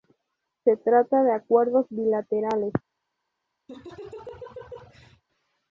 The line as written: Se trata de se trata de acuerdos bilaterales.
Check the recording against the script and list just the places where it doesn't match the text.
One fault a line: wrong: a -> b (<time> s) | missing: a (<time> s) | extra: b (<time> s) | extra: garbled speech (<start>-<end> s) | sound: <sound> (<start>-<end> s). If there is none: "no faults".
missing: se trata de (1.3 s)
sound: laugh (3.7-5.2 s)